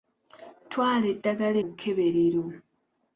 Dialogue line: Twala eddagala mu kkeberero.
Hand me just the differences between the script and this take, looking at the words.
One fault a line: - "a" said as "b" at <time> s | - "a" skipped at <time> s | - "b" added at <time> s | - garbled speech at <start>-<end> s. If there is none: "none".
none